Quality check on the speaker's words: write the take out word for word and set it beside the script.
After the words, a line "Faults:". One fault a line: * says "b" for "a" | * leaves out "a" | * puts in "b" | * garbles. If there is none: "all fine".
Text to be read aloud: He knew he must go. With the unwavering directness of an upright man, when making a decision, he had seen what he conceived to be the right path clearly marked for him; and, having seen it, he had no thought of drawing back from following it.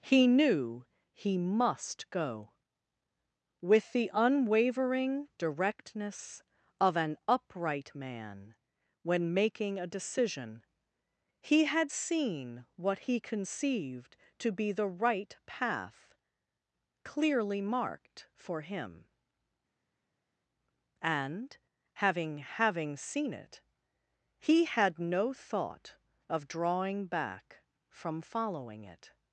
He knew he must go. With the unwavering directness of an upright man, when making a decision, he had seen what he conceived to be the right path clearly marked for him; and, having having seen it, he had no thought of drawing back from following it.
Faults:
* puts in "having"